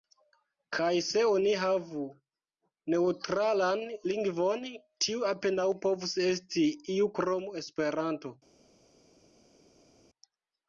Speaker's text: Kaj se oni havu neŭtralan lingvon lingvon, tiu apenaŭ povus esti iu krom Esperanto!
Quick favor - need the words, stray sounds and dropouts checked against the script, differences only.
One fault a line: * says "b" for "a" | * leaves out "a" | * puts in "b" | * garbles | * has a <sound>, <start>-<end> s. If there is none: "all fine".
* leaves out "lingvon"